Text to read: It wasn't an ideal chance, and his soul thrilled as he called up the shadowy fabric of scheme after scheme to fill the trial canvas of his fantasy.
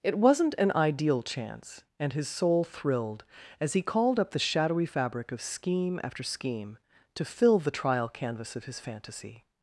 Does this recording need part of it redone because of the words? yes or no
no